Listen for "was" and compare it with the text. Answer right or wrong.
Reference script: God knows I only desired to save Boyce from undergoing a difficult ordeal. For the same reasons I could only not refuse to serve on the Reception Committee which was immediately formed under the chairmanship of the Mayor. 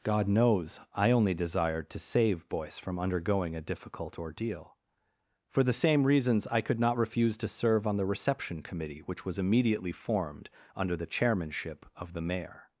right